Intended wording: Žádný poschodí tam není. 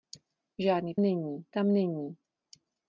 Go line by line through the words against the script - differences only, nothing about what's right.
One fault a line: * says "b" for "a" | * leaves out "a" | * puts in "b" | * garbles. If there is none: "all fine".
* says "není" for "poschodí"